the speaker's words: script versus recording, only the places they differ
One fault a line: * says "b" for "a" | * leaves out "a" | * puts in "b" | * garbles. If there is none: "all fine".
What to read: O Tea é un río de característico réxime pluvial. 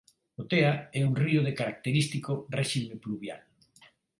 all fine